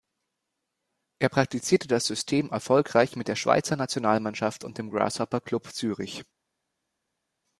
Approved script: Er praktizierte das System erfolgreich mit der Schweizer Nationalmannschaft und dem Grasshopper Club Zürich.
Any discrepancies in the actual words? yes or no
no